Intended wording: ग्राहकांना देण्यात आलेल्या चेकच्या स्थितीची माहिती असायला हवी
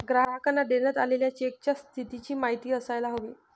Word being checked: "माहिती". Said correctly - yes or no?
yes